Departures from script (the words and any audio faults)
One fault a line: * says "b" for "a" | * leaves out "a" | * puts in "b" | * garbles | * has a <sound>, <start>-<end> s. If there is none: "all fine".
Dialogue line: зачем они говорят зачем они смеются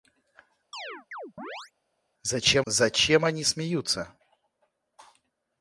* has a chirp, 0.7-1.7 s
* leaves out "они говорят"